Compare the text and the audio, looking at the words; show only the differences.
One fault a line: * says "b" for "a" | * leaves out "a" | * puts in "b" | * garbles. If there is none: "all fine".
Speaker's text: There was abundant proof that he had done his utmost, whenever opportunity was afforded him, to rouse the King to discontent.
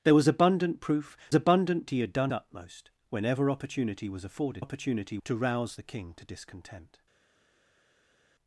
* says "abundant" for "that"
* leaves out "his"
* says "opportunity" for "him"